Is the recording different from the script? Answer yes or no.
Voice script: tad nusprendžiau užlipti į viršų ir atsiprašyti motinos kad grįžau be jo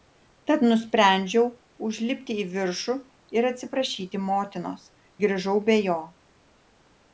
yes